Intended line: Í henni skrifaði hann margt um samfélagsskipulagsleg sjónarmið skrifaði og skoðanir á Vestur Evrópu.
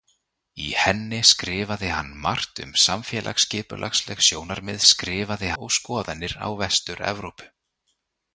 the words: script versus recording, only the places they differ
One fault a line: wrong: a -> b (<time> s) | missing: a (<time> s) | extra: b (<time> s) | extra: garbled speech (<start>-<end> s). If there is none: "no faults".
no faults